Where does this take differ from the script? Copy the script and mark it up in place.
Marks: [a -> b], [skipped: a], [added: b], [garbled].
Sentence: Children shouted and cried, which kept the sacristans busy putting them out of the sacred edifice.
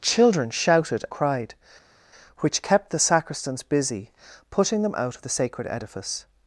Children shouted [skipped: and] cried, which kept the sacristans busy putting them out of the sacred edifice.